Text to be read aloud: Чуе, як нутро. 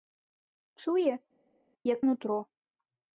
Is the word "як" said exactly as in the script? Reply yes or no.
yes